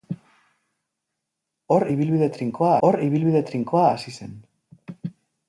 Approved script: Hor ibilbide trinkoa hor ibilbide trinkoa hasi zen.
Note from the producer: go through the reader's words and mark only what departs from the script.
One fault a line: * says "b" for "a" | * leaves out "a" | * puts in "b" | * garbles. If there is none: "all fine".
all fine